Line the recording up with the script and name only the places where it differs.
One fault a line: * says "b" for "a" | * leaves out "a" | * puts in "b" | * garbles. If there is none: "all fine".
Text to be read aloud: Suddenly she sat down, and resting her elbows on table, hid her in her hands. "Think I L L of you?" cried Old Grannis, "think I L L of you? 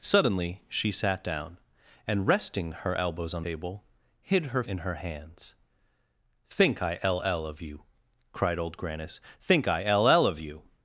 all fine